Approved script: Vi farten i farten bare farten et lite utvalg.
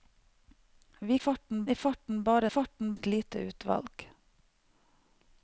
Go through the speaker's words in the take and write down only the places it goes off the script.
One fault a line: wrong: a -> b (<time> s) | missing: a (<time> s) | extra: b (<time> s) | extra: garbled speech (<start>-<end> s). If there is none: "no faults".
no faults